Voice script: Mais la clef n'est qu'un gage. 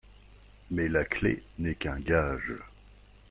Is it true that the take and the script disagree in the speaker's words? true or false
false